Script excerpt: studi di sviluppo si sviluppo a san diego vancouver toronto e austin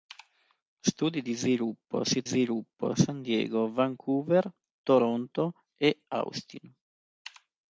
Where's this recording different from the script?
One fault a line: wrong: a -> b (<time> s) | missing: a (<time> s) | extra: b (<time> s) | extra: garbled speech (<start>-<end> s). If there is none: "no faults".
no faults